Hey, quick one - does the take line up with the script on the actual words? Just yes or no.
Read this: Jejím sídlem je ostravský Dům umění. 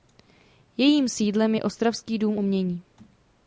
yes